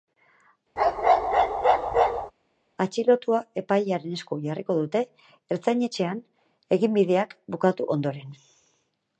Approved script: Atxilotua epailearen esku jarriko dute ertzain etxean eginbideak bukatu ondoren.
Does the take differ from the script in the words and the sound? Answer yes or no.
yes